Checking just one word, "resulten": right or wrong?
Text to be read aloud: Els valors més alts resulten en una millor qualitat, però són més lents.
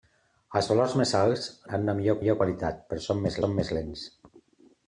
wrong